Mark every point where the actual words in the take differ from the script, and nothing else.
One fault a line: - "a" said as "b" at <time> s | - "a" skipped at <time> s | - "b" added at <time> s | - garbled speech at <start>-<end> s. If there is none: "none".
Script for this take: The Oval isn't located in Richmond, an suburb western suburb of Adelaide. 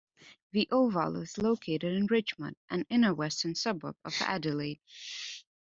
- "isn't" said as "is" at 1.2 s
- "suburb" said as "inner" at 2.9 s